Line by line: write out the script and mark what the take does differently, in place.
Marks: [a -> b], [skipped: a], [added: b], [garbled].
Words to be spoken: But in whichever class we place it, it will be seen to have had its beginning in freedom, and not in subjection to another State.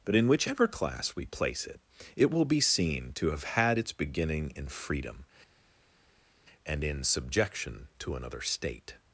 But in whichever class we place it, it will be seen to have had its beginning in freedom, and [skipped: not] in subjection to another State.